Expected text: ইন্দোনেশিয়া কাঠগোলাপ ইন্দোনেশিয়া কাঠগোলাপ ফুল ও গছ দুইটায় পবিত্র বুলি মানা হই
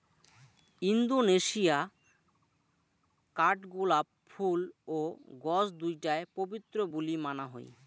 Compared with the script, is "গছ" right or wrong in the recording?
right